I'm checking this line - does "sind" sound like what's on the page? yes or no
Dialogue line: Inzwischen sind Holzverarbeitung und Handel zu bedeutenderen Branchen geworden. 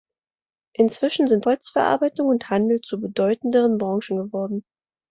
yes